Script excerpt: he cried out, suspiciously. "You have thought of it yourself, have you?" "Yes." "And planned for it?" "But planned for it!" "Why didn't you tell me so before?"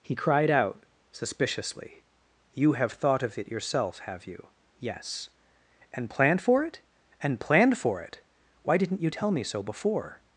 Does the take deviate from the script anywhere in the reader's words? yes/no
yes